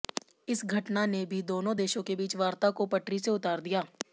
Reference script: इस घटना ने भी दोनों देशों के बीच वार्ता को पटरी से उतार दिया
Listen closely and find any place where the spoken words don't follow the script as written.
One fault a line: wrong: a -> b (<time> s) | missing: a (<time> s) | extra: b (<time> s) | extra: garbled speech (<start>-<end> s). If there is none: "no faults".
no faults